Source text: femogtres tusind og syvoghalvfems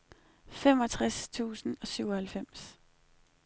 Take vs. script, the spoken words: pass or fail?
pass